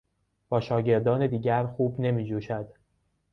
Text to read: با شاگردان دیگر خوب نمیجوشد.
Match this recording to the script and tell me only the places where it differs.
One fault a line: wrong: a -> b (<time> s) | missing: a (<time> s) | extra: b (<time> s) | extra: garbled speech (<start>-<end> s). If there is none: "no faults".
no faults